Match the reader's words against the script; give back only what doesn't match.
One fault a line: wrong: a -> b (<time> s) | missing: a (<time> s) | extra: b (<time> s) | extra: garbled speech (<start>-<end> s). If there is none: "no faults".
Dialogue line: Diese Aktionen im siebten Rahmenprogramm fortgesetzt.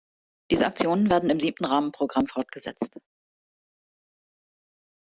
extra: werden (1.1 s)